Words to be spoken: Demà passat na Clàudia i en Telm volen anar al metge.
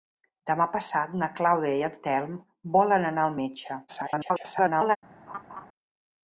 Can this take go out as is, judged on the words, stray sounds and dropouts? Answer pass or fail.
fail